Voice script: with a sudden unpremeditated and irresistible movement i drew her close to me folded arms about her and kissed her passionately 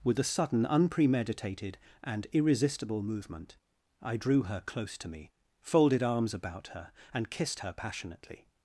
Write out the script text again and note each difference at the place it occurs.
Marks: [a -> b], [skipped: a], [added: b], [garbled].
with a sudden unpremeditated and irresistible movement i drew her close to me folded arms about her and kissed her passionately